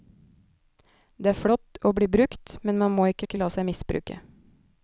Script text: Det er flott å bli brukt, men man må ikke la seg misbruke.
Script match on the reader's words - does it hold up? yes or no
no